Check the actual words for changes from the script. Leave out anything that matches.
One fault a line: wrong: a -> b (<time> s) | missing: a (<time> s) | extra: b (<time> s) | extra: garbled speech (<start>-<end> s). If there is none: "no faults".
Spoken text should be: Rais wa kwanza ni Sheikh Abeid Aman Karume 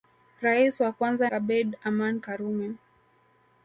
missing: ni Sheikh (1.3 s)